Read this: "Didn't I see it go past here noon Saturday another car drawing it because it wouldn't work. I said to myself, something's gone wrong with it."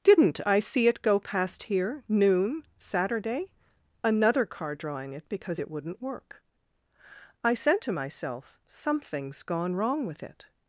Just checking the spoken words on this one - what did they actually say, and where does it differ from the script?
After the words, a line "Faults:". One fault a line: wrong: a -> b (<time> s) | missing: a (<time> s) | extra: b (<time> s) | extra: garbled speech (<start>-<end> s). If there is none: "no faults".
"Didn't I see it go past here noon Saturday another car drawing it because it wouldn't work. I said to myself, something's gone wrong with it."
Faults:
no faults